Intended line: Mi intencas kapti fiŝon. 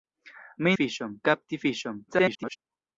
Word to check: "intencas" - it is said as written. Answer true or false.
false